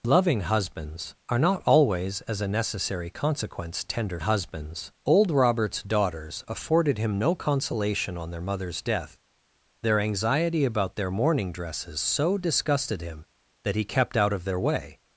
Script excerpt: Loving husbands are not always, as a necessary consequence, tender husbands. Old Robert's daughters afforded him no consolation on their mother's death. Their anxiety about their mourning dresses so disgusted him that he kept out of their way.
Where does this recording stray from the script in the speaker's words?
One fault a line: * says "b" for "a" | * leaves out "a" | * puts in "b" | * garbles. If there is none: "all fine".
all fine